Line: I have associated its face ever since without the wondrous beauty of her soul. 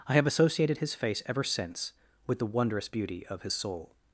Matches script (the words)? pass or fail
fail